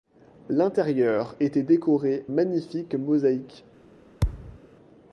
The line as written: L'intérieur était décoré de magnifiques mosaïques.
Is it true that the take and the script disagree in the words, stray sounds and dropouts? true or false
true